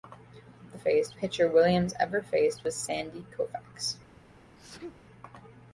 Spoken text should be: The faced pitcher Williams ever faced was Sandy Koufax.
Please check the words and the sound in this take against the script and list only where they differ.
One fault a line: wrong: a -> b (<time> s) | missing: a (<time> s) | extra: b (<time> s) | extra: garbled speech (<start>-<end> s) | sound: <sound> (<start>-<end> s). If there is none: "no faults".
sound: sneeze (4.6-5.0 s)